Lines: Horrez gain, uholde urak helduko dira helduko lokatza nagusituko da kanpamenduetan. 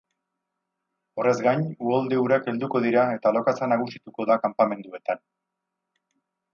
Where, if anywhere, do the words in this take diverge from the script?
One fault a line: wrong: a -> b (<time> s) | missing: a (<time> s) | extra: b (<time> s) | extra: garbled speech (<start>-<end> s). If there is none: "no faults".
wrong: helduko -> eta (3.2 s)